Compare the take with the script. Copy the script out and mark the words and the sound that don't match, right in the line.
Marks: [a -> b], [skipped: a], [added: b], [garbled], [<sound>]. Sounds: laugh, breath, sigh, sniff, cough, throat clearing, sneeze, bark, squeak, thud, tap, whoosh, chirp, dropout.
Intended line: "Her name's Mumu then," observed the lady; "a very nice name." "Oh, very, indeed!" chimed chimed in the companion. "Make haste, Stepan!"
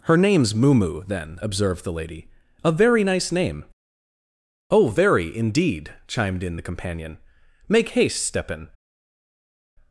"Her name's Mumu then," observed the lady; "a very nice name." "Oh, very, indeed!" chimed [skipped: chimed] in the companion. "Make haste, Stepan!"